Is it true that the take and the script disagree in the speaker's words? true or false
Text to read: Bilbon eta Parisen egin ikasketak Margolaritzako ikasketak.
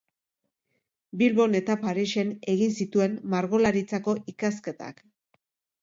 true